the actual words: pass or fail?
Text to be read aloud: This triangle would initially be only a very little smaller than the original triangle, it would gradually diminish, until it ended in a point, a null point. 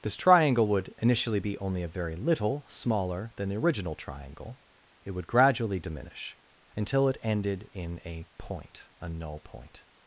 pass